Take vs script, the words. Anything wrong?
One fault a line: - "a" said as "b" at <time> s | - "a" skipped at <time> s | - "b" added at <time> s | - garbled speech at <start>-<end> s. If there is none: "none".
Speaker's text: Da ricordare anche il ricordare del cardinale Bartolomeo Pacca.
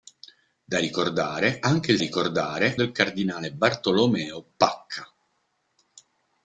none